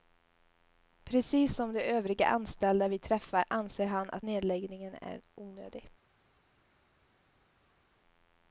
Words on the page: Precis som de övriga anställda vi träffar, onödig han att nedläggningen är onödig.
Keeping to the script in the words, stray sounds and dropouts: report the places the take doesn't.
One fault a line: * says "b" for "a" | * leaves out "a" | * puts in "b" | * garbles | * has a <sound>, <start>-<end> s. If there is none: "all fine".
* says "anser" for "onödig"